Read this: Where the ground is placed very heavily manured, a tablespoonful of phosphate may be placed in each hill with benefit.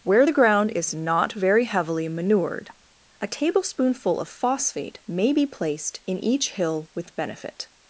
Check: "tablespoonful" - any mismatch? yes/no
no